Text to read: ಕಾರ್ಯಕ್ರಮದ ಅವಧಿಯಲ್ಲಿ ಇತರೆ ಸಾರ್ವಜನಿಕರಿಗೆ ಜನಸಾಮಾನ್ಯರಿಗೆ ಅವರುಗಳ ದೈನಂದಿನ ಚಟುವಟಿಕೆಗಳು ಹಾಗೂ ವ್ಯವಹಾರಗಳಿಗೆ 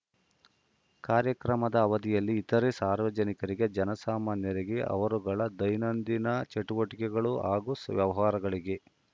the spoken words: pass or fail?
pass